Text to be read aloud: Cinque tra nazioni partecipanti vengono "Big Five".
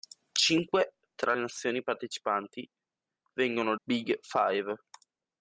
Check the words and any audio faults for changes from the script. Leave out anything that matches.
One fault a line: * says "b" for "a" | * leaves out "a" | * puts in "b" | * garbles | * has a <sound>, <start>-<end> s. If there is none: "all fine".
all fine